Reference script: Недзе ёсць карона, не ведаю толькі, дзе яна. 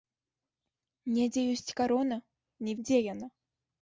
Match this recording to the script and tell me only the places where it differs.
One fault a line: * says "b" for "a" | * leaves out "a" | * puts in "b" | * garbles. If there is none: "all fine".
* leaves out "ведаю толькі"